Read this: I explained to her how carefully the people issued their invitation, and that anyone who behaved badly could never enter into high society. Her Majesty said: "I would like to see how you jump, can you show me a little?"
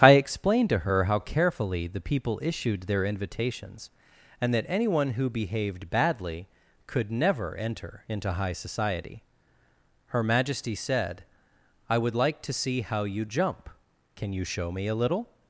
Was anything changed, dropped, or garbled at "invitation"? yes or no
yes